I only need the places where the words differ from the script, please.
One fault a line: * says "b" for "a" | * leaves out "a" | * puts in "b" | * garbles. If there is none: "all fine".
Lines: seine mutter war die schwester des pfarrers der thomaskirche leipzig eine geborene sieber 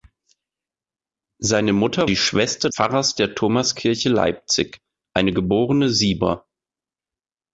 * leaves out "war"
* leaves out "des"